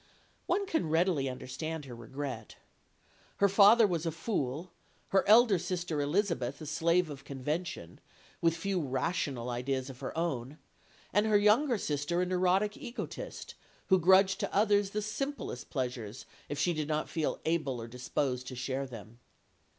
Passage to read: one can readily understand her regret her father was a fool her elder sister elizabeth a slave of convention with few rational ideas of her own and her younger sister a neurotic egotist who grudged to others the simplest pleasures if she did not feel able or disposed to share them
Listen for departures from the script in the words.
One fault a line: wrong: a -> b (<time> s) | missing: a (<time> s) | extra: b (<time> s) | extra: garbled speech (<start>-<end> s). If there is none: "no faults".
no faults